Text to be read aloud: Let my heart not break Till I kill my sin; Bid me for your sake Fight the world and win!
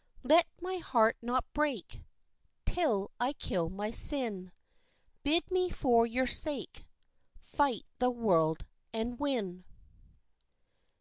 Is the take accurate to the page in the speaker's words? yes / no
yes